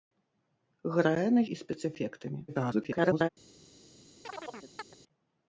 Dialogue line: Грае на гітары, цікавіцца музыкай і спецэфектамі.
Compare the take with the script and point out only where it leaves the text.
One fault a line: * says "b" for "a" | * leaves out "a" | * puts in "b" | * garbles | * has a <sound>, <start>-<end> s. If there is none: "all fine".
* leaves out "гітары цікавіцца музыкай"
* garbles
* has a chirp, 4.2-5.0 s